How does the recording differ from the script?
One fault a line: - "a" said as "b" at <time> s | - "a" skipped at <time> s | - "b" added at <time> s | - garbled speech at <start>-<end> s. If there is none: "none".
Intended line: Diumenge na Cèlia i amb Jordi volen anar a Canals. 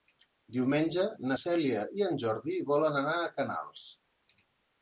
- "amb" said as "en" at 2.1 s